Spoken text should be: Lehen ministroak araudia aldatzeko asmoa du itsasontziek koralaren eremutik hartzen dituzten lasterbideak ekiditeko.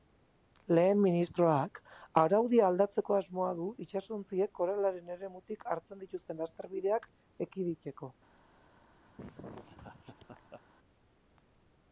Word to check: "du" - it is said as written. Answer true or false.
true